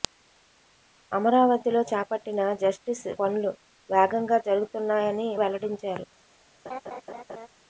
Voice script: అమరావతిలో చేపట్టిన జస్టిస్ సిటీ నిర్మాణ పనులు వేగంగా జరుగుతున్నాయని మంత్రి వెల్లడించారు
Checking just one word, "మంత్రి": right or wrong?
wrong